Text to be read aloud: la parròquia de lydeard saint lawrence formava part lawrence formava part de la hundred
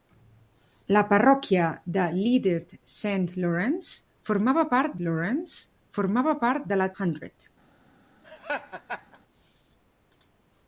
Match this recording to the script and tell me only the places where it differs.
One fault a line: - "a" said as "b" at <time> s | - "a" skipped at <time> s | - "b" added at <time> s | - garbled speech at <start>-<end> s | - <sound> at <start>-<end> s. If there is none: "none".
- laugh at 8.2-9.2 s